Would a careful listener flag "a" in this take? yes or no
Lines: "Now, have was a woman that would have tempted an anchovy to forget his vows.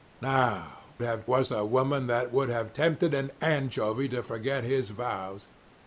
no